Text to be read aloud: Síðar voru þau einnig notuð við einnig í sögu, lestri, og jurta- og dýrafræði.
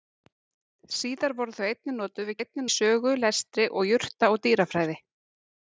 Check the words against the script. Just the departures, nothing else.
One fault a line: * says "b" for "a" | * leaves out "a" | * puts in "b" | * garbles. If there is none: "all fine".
all fine